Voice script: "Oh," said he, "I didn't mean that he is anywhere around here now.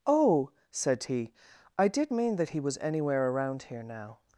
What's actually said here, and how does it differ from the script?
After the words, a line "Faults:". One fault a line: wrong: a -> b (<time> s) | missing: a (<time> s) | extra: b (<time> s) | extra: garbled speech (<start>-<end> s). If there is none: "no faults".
"Oh," said he, "I did mean that he was anywhere around here now.
Faults:
wrong: didn't -> did (1.9 s)
wrong: is -> was (2.6 s)